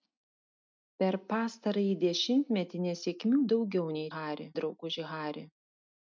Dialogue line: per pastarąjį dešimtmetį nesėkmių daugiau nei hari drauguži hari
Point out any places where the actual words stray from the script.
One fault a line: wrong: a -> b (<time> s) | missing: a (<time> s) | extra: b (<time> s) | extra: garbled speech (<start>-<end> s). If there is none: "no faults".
no faults